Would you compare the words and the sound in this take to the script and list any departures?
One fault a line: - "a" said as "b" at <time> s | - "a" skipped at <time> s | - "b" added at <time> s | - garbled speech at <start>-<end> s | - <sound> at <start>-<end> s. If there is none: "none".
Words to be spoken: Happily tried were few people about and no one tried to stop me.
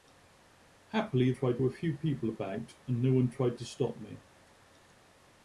none